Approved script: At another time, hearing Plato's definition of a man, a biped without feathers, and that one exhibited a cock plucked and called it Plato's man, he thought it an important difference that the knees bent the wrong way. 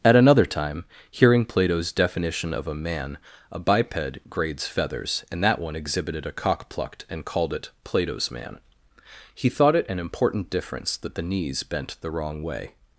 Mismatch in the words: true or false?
true